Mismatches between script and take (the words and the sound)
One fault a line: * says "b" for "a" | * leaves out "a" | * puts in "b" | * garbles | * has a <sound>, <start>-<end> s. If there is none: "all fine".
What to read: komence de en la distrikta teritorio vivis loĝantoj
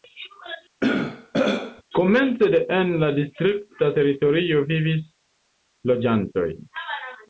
* has a throat clearing, 0.8-1.8 s